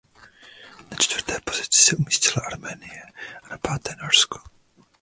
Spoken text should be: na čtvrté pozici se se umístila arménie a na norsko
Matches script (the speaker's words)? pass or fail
fail